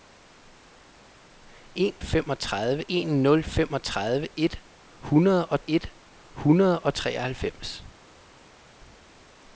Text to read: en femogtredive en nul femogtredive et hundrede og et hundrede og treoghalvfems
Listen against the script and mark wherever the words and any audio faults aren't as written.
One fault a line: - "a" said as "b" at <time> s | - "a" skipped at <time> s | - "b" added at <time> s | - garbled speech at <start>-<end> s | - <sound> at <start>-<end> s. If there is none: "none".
none